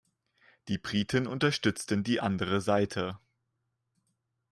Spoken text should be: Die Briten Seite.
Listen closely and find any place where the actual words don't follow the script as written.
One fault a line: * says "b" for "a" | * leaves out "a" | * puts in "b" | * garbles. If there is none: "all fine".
* puts in "unterstützten die andere"